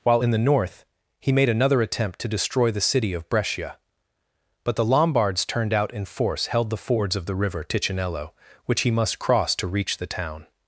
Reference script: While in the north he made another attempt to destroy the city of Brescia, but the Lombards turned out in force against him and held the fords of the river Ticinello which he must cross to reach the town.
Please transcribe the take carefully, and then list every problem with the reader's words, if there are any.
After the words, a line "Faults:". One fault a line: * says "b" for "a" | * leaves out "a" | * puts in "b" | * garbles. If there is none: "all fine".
While in the north he made another attempt to destroy the city of Brescia, but the Lombards turned out in force held the fords of the river Ticinello which he must cross to reach the town.
Faults:
* leaves out "against him and"